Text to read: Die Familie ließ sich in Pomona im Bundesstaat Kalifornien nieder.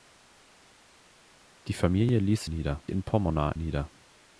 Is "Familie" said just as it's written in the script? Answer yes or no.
yes